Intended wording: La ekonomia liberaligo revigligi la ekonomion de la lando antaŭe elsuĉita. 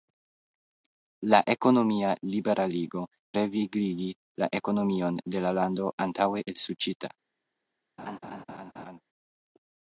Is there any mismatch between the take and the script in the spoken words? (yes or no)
no